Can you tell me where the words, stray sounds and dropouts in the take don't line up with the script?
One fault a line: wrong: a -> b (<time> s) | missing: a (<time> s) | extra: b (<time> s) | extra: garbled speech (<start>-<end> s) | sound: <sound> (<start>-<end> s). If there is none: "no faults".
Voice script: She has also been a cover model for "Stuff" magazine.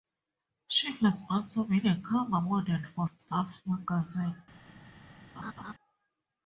sound: laugh (5.4-5.7 s)